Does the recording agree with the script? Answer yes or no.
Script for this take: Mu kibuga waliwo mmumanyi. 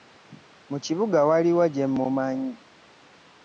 no